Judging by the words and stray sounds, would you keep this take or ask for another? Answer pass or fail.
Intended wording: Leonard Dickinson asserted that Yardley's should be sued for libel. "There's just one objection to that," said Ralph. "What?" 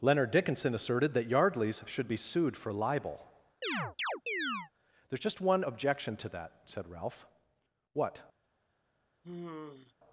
fail